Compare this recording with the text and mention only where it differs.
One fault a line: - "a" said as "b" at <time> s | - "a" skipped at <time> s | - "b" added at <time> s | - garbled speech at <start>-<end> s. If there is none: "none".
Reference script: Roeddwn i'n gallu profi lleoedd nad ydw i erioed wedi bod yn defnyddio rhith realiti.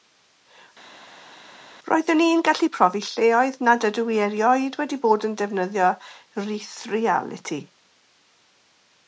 none